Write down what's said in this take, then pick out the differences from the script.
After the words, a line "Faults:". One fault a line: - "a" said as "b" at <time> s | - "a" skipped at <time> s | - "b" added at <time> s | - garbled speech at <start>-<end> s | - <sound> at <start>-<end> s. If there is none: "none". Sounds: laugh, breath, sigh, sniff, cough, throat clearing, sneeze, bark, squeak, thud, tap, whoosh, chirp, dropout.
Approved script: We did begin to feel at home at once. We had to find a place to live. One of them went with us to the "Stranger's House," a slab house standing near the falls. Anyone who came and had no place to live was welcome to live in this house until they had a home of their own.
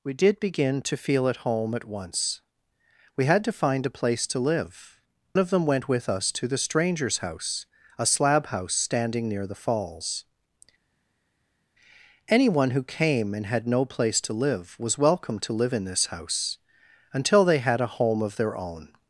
We did begin to feel at home at once. We had to find a place to live. Of them went with us to the "Stranger's House," a slab house standing near the falls. Anyone who came and had no place to live was welcome to live in this house until they had a home of their own.
Faults:
- "One" skipped at 5.0 s